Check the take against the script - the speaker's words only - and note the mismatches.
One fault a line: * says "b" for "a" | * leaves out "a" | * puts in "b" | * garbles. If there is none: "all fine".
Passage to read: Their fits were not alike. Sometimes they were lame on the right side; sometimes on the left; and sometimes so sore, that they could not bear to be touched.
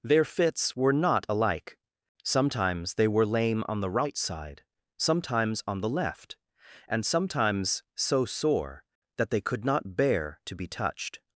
all fine